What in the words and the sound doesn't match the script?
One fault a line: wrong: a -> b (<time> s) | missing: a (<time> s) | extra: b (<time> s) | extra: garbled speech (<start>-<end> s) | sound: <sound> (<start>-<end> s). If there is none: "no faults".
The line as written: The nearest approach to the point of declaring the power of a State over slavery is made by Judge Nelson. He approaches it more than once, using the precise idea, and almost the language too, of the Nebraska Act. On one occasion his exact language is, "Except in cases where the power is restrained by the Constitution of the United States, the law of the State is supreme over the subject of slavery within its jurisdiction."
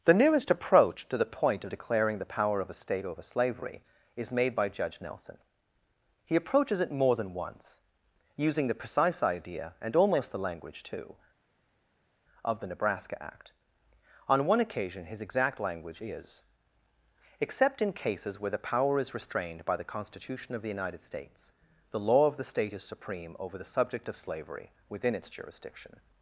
no faults